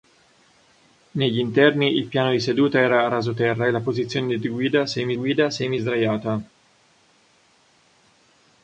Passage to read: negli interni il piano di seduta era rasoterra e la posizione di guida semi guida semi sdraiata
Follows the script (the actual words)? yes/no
yes